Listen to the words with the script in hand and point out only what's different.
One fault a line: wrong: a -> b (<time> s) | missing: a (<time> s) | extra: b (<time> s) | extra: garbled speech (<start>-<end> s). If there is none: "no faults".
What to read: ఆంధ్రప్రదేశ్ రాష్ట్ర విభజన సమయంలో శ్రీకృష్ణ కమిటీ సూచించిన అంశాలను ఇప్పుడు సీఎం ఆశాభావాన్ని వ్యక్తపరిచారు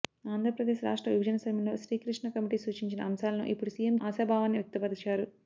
no faults